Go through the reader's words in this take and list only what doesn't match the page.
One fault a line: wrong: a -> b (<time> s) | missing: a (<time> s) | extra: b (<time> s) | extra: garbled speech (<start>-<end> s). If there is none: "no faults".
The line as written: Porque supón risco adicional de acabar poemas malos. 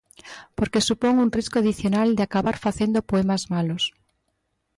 extra: un (1.2 s)
extra: facendo (2.6 s)